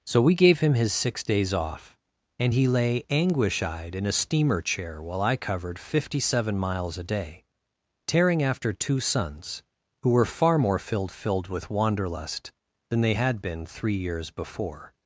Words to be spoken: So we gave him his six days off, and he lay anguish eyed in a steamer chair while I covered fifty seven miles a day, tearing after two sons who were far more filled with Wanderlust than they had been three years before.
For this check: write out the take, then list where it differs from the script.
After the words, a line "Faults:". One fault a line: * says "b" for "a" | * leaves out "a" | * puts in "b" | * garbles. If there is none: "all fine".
So we gave him his six days off, and he lay anguish eyed in a steamer chair while I covered fifty seven miles a day, tearing after two sons who were far more filled filled with Wanderlust than they had been three years before.
Faults:
* puts in "filled"